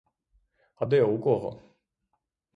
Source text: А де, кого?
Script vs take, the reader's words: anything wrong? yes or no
yes